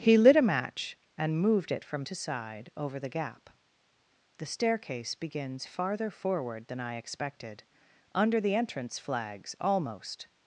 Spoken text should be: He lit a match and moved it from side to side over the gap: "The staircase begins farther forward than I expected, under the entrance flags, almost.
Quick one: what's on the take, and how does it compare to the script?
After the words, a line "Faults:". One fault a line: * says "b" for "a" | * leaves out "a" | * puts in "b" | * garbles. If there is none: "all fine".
He lit a match and moved it from to side over the gap: "The staircase begins farther forward than I expected, under the entrance flags, almost.
Faults:
* leaves out "side"